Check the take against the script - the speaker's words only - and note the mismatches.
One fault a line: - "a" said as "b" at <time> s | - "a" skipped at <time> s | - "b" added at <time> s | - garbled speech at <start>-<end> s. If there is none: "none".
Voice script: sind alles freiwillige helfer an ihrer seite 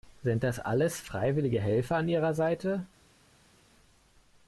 - "das" added at 0.4 s